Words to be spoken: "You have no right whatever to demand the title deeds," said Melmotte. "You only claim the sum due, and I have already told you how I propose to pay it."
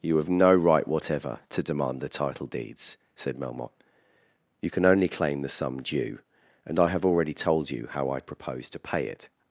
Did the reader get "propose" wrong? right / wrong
right